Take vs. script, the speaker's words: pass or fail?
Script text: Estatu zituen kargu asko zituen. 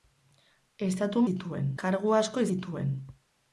pass